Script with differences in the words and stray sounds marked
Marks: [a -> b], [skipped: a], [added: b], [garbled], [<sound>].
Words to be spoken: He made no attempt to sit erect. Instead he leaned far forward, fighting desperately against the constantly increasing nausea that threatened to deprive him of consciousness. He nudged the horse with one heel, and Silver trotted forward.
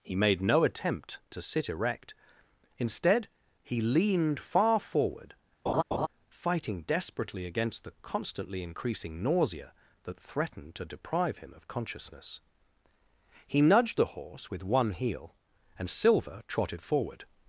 He made no attempt to sit erect. Instead he leaned far forward, [laugh] fighting desperately against the constantly increasing nausea that threatened to deprive him of consciousness. He nudged the horse with one heel, and Silver trotted forward.